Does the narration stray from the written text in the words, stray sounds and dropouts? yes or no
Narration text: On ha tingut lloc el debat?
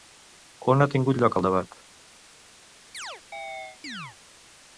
yes